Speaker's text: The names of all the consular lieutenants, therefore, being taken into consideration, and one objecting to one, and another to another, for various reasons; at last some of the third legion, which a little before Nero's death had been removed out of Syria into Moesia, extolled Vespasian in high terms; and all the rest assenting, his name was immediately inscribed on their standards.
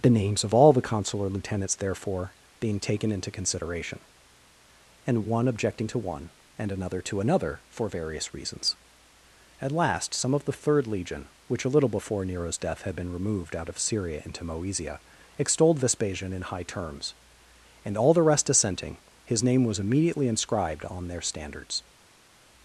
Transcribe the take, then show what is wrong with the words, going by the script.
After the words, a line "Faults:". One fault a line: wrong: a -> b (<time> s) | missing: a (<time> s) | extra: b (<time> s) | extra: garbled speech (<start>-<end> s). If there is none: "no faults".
The names of all the consular lieutenants, therefore, being taken into consideration, and one objecting to one, and another to another, for various reasons; at last some of the third legion, which a little before Nero's death had been removed out of Syria into Moesia, extolled Vespasian in high terms; and all the rest assenting, his name was immediately inscribed on their standards.
Faults:
no faults